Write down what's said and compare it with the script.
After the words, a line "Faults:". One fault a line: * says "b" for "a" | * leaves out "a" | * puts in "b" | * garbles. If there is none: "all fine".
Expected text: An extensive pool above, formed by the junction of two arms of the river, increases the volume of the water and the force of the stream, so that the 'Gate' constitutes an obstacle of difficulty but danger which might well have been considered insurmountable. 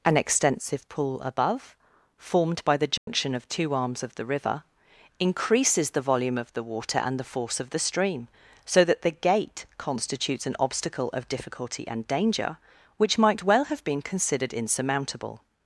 An extensive pool above, formed by the junction of two arms of the river, increases the volume of the water and the force of the stream, so that the 'Gate' constitutes an obstacle of difficulty and danger which might well have been considered insurmountable.
Faults:
* says "and" for "but"